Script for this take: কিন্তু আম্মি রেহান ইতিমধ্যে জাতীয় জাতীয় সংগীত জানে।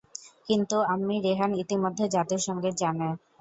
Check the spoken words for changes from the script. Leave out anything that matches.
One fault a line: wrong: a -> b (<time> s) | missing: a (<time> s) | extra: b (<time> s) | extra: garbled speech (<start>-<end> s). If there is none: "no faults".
missing: জাতীয় (2.4 s)